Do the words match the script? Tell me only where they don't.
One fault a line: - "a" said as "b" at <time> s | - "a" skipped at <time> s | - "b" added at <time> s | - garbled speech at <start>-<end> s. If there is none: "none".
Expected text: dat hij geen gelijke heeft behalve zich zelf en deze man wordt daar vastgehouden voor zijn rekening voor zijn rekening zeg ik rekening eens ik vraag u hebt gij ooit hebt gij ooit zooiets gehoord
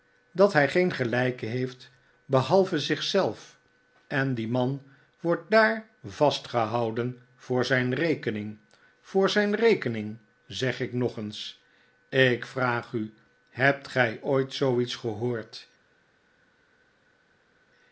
- "deze" said as "die" at 4.3 s
- "rekening" said as "nog" at 10.9 s
- "hebt gij ooit" skipped at 14.5 s